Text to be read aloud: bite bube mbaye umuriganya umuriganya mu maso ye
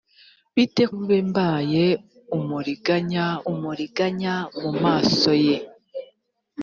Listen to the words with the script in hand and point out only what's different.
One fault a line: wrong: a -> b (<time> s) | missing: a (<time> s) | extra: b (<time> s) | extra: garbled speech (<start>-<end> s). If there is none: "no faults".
no faults